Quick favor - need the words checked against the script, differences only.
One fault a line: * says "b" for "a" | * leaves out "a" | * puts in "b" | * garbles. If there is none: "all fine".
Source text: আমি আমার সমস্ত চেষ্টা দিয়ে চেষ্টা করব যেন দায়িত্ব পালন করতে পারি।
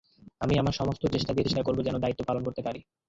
all fine